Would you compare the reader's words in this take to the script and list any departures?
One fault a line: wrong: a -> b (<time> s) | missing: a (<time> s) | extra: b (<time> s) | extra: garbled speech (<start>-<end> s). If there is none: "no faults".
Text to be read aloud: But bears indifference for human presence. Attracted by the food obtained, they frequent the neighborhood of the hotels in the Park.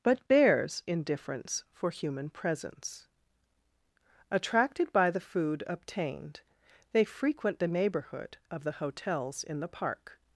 no faults